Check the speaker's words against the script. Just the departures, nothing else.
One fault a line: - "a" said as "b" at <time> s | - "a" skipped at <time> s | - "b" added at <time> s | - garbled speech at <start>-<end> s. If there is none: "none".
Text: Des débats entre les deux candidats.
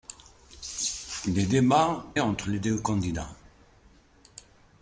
none